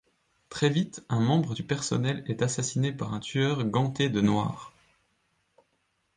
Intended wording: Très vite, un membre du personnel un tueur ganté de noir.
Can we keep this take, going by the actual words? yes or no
no